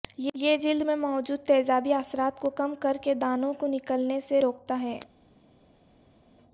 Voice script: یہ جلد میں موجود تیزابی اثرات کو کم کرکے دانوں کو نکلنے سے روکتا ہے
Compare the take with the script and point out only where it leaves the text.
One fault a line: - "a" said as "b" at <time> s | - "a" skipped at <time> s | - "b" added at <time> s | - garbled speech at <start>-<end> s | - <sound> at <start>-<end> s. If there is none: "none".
none